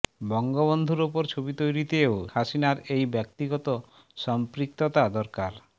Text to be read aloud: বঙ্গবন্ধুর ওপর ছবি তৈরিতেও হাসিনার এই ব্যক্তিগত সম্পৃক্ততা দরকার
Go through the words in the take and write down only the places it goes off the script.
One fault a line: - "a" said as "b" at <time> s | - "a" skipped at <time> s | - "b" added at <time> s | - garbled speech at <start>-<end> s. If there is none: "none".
none